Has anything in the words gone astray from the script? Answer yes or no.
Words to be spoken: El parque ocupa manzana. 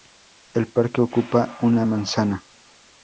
yes